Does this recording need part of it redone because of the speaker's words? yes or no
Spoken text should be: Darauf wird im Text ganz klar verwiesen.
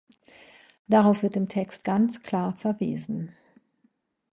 no